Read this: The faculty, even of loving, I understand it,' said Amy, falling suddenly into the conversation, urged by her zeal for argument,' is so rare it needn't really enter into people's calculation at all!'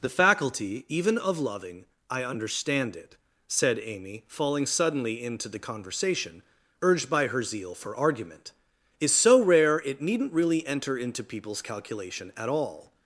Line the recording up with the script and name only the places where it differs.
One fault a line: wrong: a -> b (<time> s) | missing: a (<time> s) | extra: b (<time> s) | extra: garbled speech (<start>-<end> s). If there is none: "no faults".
no faults